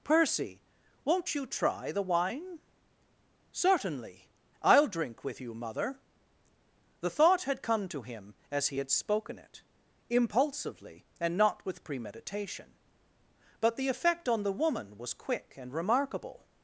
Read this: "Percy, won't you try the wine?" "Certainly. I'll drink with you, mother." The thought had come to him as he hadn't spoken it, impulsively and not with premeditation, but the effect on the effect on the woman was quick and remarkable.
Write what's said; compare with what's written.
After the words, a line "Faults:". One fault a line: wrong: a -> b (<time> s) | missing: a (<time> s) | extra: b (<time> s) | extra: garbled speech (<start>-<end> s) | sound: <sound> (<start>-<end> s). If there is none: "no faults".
"Percy, won't you try the wine?" "Certainly. I'll drink with you, mother." The thought had come to him as he had spoken it, impulsively and not with premeditation, but the effect on the woman was quick and remarkable.
Faults:
wrong: hadn't -> had (8.8 s)
missing: effect on the (14.5 s)